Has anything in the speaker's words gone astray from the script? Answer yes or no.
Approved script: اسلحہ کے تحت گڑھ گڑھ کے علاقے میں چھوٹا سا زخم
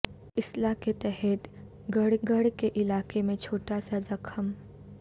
no